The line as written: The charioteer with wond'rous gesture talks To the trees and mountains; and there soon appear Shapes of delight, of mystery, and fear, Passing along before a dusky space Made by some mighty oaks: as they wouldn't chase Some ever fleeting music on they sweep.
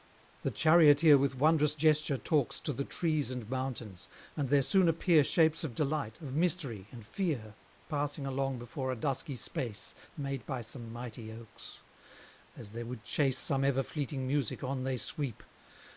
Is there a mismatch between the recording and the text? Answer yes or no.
yes